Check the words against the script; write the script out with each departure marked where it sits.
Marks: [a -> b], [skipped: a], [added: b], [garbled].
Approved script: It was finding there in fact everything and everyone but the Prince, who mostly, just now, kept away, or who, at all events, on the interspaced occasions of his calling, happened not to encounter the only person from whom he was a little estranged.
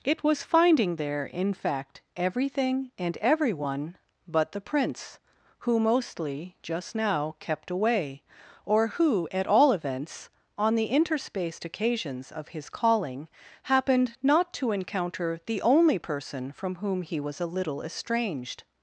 It was finding there in fact everything and everyone but the Prince, who mostly, just now, kept away, or who, at all events, on the interspaced occasions of his calling, happened not to encounter the only person from whom he was a little estranged.